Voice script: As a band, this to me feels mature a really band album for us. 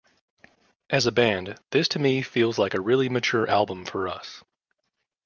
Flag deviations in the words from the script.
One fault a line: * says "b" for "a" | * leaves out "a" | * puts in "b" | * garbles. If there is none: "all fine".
* says "like" for "mature"
* says "mature" for "band"